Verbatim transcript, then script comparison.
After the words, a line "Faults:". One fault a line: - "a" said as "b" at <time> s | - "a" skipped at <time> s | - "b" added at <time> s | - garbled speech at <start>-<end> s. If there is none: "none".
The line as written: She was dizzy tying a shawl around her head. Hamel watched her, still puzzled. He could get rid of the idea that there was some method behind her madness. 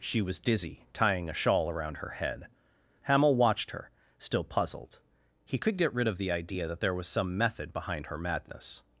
She was dizzy tying a shawl around her head. Hamel watched her, still puzzled. He could get rid of the idea that there was some method behind her madness.
Faults:
none